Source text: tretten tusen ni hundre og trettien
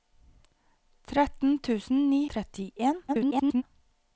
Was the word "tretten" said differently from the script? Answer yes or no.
no